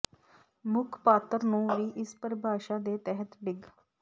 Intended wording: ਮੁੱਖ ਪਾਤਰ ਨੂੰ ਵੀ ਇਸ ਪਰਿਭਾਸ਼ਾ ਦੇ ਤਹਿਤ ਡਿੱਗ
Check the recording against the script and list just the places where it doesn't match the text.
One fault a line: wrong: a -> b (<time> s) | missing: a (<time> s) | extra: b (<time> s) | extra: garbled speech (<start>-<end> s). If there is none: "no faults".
no faults